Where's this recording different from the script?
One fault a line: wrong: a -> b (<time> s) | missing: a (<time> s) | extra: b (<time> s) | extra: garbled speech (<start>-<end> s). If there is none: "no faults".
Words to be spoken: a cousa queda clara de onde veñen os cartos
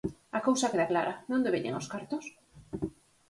no faults